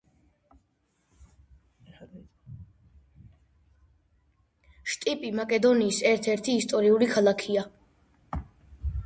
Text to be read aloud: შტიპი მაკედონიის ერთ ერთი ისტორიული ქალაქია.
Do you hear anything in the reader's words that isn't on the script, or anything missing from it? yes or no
no